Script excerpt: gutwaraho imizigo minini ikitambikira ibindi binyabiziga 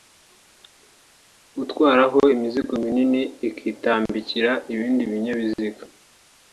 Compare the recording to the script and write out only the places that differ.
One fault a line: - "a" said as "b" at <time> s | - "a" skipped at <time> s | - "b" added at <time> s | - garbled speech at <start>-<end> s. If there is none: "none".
none